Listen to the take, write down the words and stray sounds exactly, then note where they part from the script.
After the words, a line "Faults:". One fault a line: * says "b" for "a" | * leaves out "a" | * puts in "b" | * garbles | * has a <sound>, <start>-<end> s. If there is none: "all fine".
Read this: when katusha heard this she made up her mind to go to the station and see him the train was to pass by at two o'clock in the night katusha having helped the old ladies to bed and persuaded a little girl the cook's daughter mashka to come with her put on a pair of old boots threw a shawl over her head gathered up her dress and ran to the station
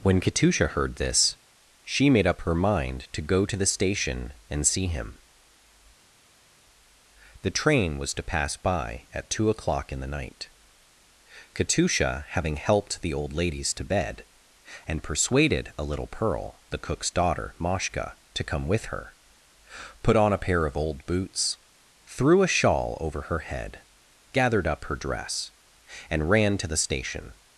when katusha heard this she made up her mind to go to the station and see him the train was to pass by at two o'clock in the night katusha having helped the old ladies to bed and persuaded a little pearl the cook's daughter mashka to come with her put on a pair of old boots threw a shawl over her head gathered up her dress and ran to the station
Faults:
* says "pearl" for "girl"